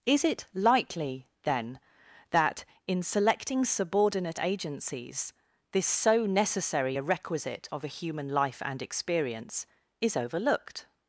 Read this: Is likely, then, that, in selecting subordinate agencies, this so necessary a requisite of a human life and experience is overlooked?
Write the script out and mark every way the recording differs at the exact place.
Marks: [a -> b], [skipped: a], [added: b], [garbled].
Is [added: it] likely, then, that, in selecting subordinate agencies, this so necessary a requisite of a human life and experience is overlooked?